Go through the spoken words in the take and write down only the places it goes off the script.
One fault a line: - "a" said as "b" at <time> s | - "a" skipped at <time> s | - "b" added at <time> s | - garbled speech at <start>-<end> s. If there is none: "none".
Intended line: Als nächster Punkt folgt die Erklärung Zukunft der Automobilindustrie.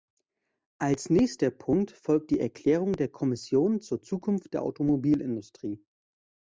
- "der Kommission zur" added at 2.9 s